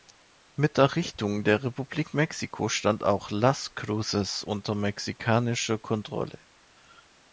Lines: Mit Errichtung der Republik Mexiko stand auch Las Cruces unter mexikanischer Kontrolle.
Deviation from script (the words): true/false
false